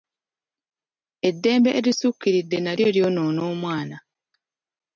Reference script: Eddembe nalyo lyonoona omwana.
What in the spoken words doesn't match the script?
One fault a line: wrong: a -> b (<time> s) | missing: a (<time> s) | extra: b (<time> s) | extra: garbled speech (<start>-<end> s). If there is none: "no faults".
extra: erisukkiridde (1.8 s)